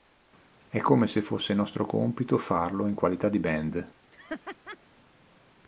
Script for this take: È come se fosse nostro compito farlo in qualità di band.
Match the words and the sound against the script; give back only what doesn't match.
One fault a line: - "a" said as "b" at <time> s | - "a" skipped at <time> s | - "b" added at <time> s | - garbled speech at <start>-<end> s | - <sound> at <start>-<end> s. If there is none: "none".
- laugh at 4.1-4.8 s